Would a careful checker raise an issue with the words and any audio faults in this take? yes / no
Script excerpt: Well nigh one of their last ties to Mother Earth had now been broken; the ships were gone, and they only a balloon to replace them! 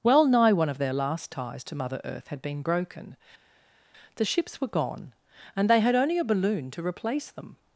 yes